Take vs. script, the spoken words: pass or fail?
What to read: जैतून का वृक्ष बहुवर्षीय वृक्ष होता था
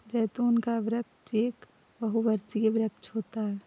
fail